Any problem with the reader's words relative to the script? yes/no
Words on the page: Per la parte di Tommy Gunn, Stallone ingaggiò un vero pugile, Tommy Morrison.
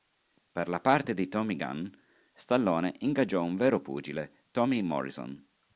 no